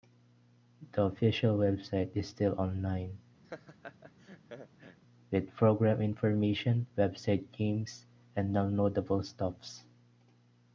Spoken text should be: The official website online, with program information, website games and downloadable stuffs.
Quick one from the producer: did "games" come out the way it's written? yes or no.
yes